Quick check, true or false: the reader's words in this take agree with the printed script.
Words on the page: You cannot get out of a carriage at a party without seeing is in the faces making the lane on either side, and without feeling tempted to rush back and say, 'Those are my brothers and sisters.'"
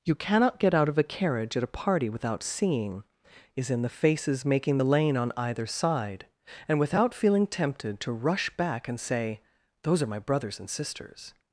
true